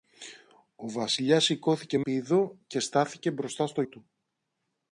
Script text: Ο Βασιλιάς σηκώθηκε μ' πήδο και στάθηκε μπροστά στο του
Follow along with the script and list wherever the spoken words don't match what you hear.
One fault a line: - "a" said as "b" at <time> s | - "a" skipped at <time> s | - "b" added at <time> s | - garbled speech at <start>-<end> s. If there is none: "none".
none